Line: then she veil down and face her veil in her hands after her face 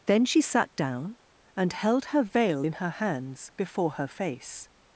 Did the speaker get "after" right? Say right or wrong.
wrong